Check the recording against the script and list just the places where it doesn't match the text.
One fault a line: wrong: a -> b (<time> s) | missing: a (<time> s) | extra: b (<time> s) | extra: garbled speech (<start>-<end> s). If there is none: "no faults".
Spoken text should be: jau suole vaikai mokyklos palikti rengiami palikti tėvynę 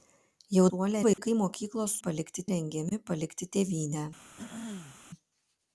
no faults